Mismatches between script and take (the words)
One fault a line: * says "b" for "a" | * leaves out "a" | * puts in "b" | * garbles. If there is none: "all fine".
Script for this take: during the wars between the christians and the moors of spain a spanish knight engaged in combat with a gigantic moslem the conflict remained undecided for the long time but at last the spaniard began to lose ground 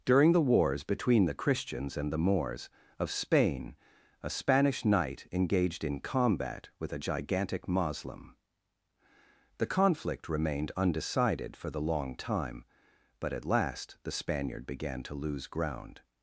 all fine